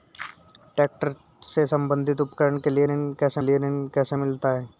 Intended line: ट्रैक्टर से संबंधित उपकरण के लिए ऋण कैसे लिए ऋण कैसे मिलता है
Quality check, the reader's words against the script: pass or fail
pass